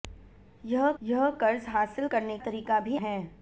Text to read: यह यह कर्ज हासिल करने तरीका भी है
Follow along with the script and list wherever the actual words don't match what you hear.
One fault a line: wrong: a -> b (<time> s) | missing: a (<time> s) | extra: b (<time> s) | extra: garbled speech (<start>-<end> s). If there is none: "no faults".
no faults